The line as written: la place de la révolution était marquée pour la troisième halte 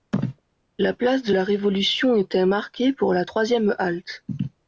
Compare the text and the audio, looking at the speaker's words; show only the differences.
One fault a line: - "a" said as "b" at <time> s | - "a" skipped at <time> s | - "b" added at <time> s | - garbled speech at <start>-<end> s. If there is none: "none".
none